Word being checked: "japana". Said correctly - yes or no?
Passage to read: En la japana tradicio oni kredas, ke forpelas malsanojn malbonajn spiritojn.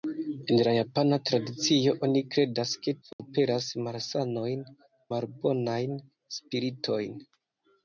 yes